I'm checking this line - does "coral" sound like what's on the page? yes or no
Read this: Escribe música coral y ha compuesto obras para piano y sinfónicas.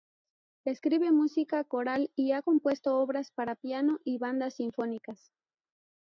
yes